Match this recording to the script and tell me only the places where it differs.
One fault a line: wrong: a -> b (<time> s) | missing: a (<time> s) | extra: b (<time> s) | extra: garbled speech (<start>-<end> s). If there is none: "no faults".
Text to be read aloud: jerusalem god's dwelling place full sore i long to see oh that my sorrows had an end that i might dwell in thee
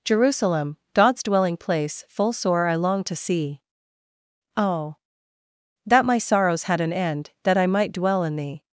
no faults